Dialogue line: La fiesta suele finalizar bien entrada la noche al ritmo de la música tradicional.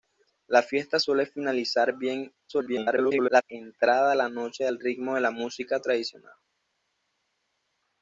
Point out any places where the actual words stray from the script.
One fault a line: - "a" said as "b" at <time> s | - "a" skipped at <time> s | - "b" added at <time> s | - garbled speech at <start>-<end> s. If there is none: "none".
- garbled speech at 2.5-3.4 s